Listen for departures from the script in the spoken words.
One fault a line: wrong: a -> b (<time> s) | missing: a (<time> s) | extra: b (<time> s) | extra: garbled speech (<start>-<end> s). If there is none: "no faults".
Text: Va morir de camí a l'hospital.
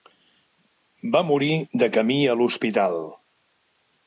no faults